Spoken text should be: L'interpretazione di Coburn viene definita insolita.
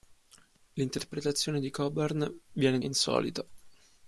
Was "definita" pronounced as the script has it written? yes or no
no